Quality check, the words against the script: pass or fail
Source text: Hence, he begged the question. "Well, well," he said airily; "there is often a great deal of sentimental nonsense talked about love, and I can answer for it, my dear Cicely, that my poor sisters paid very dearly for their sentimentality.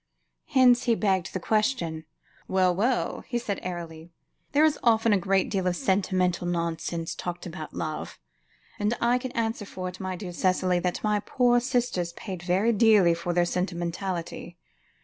pass